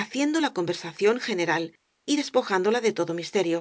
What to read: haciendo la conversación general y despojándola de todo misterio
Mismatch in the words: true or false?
false